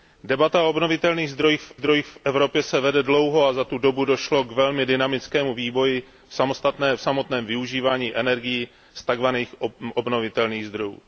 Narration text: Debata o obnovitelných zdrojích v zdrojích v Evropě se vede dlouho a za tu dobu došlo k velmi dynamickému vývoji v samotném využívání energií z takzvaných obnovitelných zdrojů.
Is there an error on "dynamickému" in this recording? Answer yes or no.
no